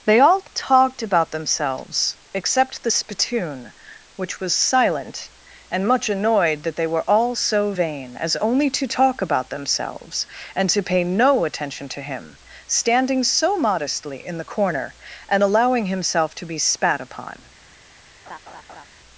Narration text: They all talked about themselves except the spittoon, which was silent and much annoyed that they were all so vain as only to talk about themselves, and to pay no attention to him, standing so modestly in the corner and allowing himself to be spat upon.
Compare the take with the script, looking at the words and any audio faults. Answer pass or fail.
fail